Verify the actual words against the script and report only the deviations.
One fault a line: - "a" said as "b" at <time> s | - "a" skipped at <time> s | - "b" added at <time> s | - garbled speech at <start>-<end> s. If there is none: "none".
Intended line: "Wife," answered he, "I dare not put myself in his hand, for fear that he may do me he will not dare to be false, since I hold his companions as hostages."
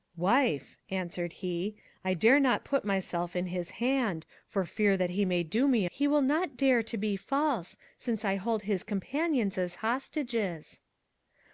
none